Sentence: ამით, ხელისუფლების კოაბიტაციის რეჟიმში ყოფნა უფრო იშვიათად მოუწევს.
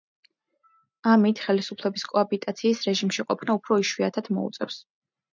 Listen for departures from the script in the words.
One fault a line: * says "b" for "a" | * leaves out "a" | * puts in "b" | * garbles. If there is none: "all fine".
all fine